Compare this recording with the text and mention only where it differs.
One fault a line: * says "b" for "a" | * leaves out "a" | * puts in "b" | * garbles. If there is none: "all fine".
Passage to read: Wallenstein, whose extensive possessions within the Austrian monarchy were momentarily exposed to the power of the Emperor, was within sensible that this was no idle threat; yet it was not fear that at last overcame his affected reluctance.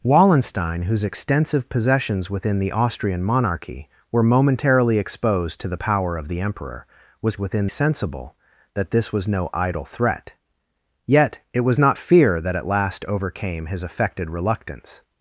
all fine